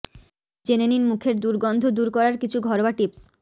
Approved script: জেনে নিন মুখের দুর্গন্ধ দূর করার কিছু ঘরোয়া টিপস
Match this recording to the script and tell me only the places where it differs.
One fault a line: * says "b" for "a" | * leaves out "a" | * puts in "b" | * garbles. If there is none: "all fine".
all fine